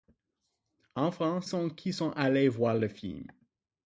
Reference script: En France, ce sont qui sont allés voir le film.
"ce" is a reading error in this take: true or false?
true